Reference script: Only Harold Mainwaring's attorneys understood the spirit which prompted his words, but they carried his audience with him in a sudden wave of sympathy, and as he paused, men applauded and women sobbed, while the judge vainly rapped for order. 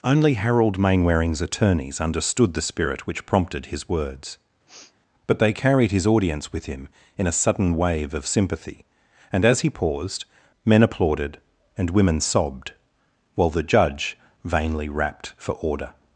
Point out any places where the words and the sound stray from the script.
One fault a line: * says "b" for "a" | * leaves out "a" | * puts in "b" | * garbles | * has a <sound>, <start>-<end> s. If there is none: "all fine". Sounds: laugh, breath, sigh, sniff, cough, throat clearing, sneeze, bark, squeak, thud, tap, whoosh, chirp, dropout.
* has a sniff, 4.7-4.9 s